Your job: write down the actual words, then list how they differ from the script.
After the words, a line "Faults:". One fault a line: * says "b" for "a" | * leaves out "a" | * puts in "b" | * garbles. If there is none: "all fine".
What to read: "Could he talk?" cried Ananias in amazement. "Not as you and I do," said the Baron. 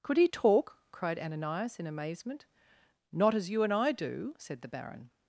"Could he talk?" cried Ananias in amazement. "Not as you and I do," said the Baron.
Faults:
all fine